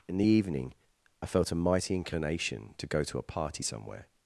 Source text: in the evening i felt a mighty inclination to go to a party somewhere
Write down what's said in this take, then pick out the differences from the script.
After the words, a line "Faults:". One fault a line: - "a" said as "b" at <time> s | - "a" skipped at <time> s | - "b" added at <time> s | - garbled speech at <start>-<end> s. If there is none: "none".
in the evening i felt a mighty inclination to go to a party somewhere
Faults:
none